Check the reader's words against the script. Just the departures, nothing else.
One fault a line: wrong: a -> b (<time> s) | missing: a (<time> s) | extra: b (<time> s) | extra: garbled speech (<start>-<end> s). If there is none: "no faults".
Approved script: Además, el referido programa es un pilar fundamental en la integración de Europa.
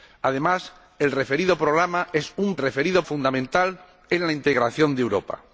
wrong: pilar -> referido (2.6 s)